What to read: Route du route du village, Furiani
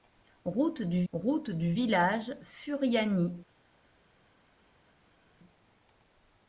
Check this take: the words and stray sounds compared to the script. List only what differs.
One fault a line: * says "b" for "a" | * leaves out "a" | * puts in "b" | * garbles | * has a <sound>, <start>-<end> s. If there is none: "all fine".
all fine